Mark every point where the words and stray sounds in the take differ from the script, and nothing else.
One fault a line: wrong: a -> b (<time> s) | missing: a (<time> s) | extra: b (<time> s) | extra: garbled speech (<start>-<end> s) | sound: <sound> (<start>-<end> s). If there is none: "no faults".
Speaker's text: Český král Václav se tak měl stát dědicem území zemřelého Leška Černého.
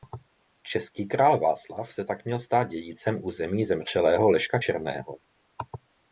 no faults